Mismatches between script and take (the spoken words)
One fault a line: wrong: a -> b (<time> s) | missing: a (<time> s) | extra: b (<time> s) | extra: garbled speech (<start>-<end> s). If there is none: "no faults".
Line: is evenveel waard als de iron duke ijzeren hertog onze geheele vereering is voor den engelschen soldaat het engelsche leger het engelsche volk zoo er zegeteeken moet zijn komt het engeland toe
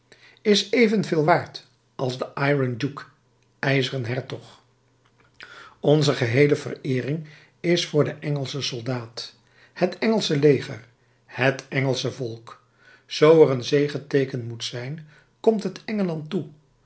extra: een (13.5 s)